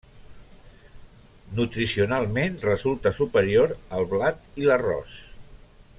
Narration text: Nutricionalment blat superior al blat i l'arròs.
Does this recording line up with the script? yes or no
no